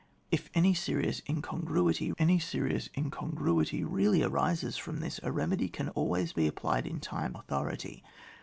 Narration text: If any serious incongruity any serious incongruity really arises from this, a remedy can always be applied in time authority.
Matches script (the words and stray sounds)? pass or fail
pass